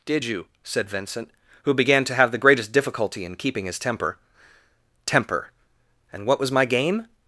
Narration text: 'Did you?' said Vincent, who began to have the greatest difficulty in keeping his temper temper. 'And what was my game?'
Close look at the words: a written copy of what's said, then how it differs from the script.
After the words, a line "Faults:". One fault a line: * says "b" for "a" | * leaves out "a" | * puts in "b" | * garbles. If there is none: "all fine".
'Did you?' said Vincent, who began to have the greatest difficulty in keeping his temper temper. 'And what was my game?'
Faults:
all fine